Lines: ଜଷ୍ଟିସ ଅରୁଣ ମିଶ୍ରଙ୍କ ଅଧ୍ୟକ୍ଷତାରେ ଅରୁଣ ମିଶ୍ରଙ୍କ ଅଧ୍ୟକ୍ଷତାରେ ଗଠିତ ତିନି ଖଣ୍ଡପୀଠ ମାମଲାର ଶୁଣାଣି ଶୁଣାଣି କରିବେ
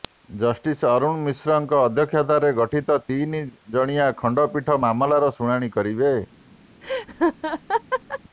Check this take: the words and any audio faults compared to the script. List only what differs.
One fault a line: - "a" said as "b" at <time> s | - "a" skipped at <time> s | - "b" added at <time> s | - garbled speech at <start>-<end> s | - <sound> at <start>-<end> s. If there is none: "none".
- "ଅରୁଣ ମିଶ୍ରଙ୍କ ଅଧ୍ୟକ୍ଷତାରେ" skipped at 2.5 s
- "ଜଣିଆ" added at 3.7 s
- "ଶୁଣାଣି" skipped at 5.7 s
- laugh at 6.8-8.2 s